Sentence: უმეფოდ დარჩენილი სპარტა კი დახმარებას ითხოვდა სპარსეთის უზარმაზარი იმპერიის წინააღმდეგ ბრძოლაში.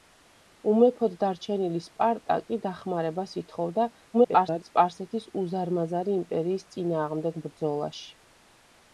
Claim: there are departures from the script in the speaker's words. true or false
true